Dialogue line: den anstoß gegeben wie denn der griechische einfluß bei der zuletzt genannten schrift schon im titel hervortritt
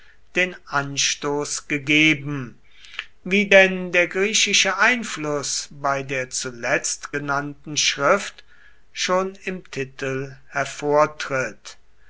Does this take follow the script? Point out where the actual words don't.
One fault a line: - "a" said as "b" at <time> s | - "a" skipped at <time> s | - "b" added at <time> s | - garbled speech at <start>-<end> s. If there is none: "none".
none